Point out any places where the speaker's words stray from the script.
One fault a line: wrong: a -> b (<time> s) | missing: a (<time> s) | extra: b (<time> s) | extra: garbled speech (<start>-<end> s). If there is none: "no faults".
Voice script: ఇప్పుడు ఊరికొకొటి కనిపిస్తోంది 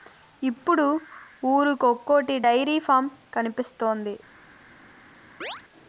extra: డైరీ ఫాం (2.4 s)